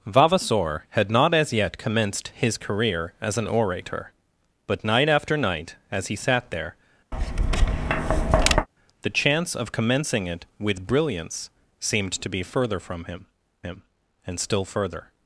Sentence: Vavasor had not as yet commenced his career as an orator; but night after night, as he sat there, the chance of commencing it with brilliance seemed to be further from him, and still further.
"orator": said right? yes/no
yes